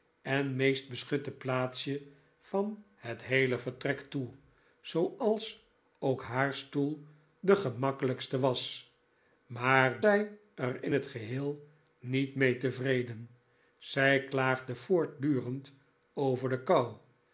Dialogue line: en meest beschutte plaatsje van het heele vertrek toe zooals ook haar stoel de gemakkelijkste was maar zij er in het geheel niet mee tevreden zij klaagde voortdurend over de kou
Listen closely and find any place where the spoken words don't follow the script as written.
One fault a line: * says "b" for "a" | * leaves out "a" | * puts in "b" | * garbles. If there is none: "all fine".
all fine